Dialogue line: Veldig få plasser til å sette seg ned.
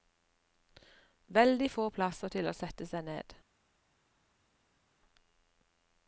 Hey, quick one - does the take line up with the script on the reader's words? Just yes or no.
yes